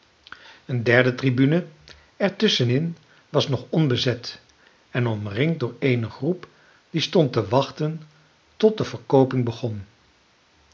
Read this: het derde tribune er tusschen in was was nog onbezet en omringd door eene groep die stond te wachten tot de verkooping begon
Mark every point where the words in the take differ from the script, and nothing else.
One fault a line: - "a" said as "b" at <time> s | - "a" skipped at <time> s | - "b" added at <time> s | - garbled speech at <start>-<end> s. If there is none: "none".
- "het" said as "een" at 0.7 s
- "was" skipped at 3.5 s